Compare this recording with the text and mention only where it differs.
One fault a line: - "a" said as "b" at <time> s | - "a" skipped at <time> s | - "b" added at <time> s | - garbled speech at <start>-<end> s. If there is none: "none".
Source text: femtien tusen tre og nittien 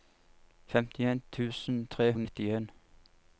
none